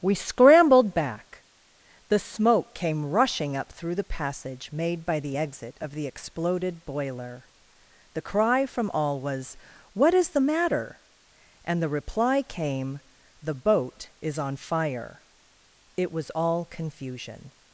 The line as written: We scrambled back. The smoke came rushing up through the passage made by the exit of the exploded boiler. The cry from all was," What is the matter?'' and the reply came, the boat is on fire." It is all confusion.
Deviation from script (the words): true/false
true